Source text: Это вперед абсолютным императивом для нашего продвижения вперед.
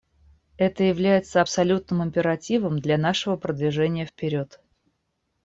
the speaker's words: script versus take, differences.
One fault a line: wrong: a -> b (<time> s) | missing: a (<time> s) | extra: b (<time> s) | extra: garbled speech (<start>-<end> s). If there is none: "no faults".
wrong: вперед -> является (0.8 s)